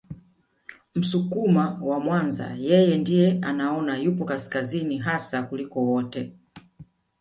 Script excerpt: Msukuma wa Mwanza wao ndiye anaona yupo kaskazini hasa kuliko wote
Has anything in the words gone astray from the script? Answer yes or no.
yes